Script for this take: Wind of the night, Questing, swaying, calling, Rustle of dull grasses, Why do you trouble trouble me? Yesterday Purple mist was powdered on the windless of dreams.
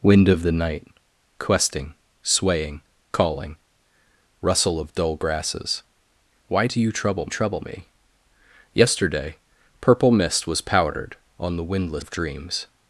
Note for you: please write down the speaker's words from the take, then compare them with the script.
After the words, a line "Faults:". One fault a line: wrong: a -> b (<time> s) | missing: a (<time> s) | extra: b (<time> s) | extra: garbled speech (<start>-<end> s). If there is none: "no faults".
Wind of the night, Questing, swaying, calling, Rustle of dull grasses, Why do you trouble trouble me? Yesterday Purple mist was powdered on the windless of dreams.
Faults:
no faults